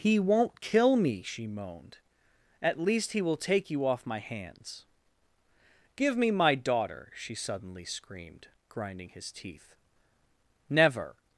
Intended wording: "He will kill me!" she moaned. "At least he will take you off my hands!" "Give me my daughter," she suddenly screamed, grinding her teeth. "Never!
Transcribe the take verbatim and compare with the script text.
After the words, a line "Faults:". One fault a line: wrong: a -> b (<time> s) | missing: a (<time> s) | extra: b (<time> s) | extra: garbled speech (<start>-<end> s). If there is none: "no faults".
"He won't kill me!" she moaned. "At least he will take you off my hands!" "Give me my daughter," she suddenly screamed, grinding his teeth. "Never!
Faults:
wrong: will -> won't (0.2 s)
wrong: her -> his (9.1 s)